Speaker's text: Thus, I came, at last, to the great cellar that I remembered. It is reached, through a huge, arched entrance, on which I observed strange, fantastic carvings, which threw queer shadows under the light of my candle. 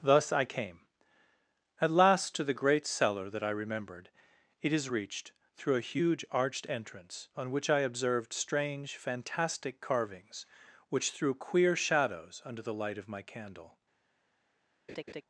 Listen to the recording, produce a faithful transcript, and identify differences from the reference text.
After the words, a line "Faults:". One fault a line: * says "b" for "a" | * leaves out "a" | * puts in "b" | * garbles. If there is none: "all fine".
Thus, I came, at last, to the great cellar that I remembered. It is reached, through a huge, arched entrance, on which I observed strange, fantastic carvings, which threw queer shadows under the light of my candle.
Faults:
all fine